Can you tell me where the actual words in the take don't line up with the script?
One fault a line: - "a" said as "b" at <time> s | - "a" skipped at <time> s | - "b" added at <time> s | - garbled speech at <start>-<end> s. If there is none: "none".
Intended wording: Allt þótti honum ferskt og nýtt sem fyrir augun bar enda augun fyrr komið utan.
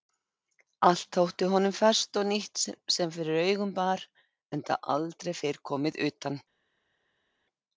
- "augun" said as "aldrei" at 5.0 s